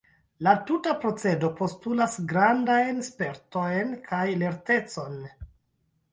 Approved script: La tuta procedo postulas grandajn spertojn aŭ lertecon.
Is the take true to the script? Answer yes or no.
no